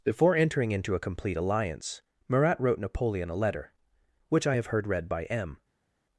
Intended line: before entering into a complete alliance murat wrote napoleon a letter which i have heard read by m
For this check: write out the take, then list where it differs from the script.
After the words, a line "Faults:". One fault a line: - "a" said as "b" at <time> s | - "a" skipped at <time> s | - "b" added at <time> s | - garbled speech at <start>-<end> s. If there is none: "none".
before entering into a complete alliance murat wrote napoleon a letter which i have heard read by m
Faults:
none